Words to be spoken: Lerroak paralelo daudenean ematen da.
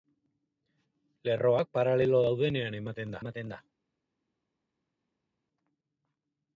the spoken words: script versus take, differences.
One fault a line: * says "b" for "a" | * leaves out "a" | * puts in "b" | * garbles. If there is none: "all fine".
* puts in "ematen"